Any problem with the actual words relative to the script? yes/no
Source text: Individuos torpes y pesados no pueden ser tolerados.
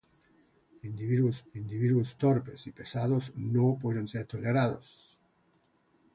yes